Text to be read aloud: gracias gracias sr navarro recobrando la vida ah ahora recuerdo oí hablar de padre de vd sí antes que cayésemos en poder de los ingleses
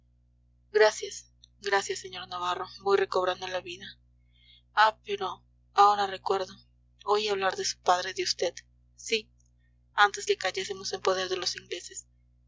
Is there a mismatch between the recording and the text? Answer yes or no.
yes